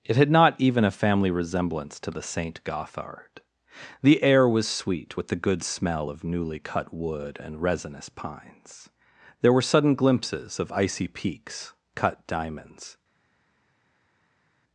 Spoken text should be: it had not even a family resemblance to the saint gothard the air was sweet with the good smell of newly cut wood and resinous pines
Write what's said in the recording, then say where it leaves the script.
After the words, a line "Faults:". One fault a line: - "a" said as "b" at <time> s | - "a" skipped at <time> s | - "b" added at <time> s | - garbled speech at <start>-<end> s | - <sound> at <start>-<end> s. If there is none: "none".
it had not even a family resemblance to the saint gothard the air was sweet with the good smell of newly cut wood and resinous pines there were sudden glimpses of icy peaks cut diamonds
Faults:
- "there were sudden glimpses of icy peaks cut diamonds" added at 9.4 s